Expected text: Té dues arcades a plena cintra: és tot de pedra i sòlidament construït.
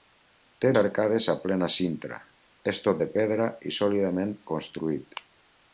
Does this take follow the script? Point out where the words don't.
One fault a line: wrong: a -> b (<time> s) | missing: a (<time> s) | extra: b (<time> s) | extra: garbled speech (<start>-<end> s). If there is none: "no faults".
missing: dues (0.7 s)